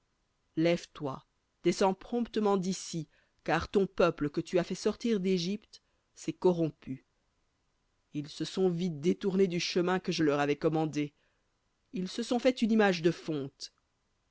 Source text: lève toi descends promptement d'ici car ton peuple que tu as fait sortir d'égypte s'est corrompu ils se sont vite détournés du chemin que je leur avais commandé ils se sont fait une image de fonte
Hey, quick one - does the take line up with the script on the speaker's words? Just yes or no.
yes